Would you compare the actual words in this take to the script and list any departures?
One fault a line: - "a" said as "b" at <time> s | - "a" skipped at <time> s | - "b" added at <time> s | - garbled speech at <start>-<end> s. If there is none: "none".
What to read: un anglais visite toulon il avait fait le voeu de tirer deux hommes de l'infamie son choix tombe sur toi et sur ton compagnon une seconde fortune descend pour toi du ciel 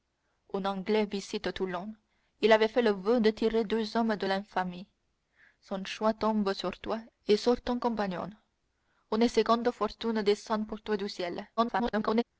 - garbled speech at 11.6-12.2 s